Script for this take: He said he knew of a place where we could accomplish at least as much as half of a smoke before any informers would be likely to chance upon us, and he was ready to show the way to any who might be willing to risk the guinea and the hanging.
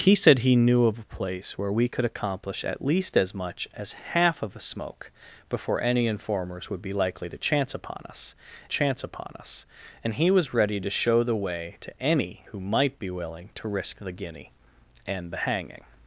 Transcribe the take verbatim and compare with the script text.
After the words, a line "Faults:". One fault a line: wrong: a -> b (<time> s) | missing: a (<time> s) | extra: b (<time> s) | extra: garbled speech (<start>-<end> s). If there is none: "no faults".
He said he knew of a place where we could accomplish at least as much as half of a smoke before any informers would be likely to chance upon us chance upon us, and he was ready to show the way to any who might be willing to risk the guinea and the hanging.
Faults:
extra: chance upon us (8.7 s)